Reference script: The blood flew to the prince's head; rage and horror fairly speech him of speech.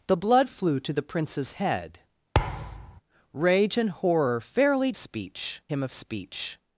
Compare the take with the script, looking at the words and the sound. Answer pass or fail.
fail